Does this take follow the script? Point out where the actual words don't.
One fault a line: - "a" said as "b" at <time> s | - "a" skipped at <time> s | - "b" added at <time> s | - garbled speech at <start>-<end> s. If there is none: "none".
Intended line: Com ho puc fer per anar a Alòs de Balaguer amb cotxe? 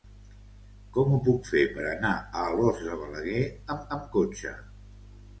- "amb" added at 4.0 s